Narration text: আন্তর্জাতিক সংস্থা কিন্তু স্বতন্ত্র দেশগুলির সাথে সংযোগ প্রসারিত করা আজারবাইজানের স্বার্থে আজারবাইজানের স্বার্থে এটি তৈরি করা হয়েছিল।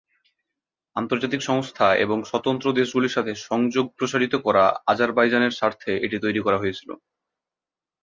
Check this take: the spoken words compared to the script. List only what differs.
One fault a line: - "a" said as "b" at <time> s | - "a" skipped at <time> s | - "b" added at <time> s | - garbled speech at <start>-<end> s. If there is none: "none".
- "কিন্তু" said as "এবং" at 2.0 s
- "আজারবাইজানের স্বার্থে" skipped at 5.9 s